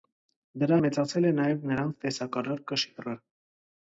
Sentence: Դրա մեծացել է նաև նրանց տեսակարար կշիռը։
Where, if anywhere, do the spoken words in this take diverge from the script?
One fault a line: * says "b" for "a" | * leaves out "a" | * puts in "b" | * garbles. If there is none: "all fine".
all fine